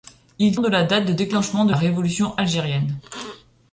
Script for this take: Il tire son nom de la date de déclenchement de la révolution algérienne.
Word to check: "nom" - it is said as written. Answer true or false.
false